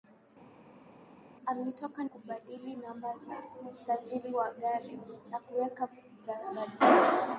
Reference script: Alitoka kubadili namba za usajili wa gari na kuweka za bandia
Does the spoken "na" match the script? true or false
true